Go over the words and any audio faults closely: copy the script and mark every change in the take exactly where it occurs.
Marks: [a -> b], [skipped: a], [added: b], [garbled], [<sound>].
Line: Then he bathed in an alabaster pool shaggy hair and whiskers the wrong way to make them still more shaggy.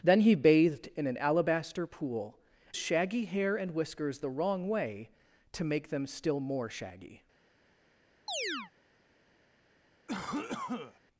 Then he bathed in an alabaster pool shaggy hair and whiskers the wrong way to make them still more shaggy. [chirp] [cough]